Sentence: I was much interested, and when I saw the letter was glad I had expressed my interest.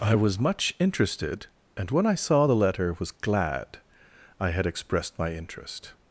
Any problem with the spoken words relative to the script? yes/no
no